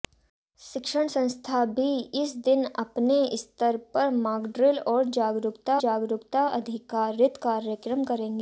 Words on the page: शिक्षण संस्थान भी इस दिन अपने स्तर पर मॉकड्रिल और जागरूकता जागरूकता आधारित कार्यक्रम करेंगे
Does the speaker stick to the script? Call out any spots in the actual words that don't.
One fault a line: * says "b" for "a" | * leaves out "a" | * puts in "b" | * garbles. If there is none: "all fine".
all fine